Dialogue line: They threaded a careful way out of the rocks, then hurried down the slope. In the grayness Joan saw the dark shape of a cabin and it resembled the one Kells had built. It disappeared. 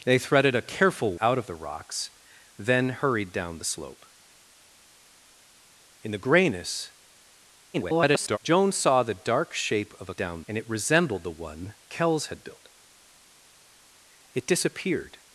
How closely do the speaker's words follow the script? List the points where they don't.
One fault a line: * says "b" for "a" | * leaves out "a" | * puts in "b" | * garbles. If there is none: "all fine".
* leaves out "way"
* garbles
* says "down" for "cabin"